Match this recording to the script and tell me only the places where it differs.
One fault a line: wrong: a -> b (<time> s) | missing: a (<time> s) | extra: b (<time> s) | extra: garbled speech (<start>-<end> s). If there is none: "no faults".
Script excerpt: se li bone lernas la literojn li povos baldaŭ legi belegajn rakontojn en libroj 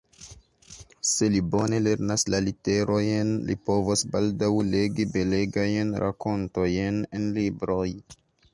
no faults